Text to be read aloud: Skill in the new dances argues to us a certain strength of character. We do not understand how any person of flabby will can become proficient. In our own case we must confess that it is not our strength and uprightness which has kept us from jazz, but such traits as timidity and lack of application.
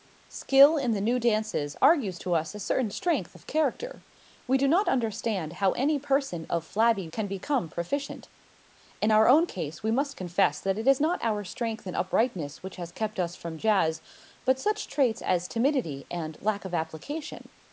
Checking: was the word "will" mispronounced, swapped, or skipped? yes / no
yes